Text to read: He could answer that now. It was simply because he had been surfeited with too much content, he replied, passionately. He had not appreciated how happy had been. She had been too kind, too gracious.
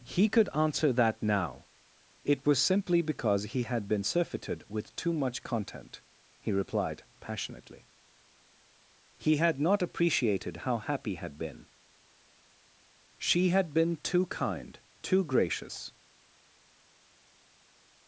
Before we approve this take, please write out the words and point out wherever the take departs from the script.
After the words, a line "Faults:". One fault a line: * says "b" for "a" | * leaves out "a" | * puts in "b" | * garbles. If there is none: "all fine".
He could answer that now. It was simply because he had been surfeited with too much content, he replied, passionately. He had not appreciated how happy had been. She had been too kind, too gracious.
Faults:
all fine